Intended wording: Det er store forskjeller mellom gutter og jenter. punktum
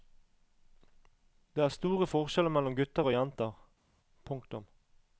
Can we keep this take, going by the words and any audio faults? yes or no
yes